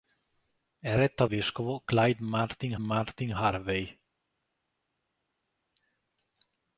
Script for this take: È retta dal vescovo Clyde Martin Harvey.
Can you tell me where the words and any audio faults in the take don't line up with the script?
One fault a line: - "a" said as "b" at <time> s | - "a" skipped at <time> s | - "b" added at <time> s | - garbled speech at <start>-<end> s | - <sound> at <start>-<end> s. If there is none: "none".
- "dal" skipped at 1.3 s
- "Martin" added at 2.8 s